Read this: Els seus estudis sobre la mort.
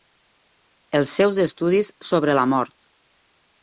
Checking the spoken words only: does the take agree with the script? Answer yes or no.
yes